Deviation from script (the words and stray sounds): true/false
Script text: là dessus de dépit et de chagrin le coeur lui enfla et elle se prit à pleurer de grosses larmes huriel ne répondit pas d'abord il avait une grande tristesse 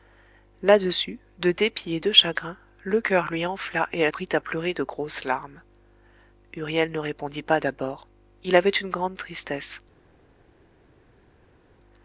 true